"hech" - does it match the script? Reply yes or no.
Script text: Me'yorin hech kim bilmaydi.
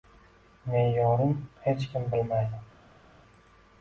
yes